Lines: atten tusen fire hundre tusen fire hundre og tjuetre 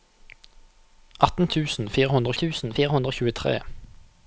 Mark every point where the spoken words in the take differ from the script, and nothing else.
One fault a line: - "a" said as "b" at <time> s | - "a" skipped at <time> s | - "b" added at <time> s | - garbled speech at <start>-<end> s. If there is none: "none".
none